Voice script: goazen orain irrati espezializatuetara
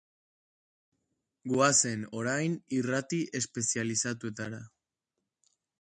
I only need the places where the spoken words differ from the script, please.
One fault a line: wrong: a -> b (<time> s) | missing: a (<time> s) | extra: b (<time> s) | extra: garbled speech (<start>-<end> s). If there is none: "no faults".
no faults